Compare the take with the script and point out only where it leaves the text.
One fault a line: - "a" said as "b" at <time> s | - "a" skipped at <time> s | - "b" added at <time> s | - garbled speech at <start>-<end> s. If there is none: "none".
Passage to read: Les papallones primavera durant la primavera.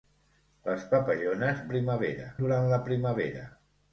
none